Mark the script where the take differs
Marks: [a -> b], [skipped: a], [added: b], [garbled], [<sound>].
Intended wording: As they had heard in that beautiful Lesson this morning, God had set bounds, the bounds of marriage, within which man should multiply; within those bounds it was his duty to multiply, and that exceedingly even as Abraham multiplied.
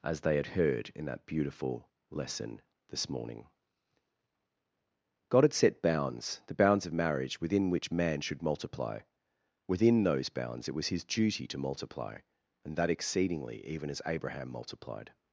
As they had heard in that beautiful Lesson this morning, God had set bounds, the bounds of marriage, within which man should multiply; within those bounds it was his duty to multiply, and that exceedingly even as Abraham multiplied.